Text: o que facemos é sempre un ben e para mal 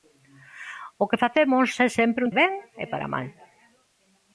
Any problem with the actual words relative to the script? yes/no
no